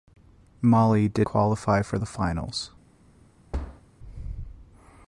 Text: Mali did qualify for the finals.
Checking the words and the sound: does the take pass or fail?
fail